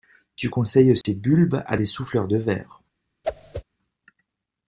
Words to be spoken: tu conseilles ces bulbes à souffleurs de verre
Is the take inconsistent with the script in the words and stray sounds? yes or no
yes